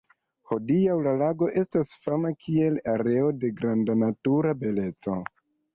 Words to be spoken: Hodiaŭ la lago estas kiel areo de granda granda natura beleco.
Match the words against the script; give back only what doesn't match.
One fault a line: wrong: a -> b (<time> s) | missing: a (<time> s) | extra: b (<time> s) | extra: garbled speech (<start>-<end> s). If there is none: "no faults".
extra: fama (2.0 s)
missing: granda (4.0 s)